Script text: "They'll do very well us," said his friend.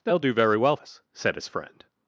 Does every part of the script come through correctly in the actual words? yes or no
yes